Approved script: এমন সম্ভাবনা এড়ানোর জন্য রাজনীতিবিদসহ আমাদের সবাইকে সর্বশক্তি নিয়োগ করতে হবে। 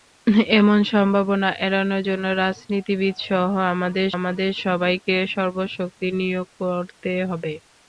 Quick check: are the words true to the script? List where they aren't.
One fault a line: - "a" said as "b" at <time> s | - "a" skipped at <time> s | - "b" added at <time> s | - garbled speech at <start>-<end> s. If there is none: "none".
- "আমাদের" added at 4.2 s